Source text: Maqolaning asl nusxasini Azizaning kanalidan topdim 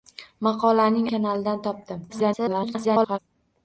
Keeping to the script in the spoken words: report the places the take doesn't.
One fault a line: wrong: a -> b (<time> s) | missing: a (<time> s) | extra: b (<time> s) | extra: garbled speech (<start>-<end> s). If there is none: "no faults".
missing: asl nusxasini Azizaning (1.1 s)
extra: garbled speech (2.1-3.2 s)